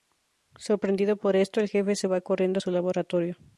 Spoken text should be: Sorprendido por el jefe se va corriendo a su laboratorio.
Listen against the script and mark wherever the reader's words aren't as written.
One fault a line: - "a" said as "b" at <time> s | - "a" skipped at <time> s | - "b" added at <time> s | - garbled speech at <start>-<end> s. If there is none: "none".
- "esto" added at 1.4 s